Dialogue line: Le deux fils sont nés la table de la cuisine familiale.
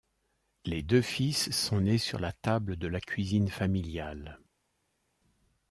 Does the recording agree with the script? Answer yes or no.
no